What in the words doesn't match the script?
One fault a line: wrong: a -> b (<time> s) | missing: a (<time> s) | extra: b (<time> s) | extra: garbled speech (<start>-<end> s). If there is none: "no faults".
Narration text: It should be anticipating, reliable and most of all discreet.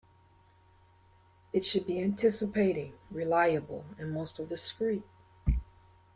missing: all (4.5 s)